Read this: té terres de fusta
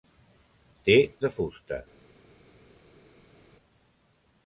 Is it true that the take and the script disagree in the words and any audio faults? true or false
true